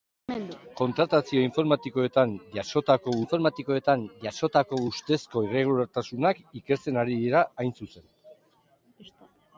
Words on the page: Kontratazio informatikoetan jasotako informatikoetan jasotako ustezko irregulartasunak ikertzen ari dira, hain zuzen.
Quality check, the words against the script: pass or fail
pass